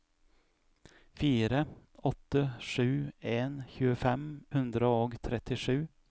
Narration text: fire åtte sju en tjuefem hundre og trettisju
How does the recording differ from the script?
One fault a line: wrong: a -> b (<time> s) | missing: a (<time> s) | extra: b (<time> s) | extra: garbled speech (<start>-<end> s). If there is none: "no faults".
no faults